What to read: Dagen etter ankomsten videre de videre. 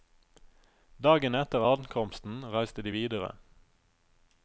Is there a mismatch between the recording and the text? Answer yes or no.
yes